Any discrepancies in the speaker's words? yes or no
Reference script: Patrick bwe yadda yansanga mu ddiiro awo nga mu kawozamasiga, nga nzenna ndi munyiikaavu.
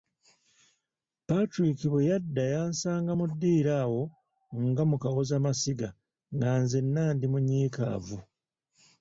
no